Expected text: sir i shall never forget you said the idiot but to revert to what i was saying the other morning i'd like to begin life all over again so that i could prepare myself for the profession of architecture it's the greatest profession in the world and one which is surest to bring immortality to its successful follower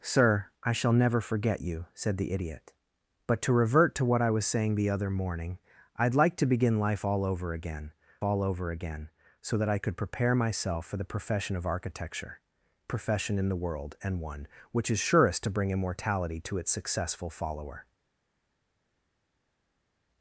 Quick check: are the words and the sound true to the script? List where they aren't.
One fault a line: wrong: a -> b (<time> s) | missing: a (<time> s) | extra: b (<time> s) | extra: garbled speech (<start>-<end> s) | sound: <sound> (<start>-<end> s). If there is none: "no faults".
extra: all over again (8.2 s)
missing: it's the greatest (12.4 s)